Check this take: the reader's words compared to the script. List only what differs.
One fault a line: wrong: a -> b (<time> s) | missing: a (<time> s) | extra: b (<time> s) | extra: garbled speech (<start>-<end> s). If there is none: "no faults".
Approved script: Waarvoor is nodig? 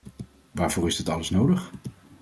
extra: dit alles (0.9 s)